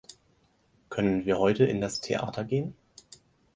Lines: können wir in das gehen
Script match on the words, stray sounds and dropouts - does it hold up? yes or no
no